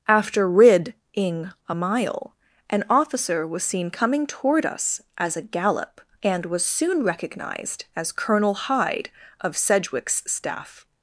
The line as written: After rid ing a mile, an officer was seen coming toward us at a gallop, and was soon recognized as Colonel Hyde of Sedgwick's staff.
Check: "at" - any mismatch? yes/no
yes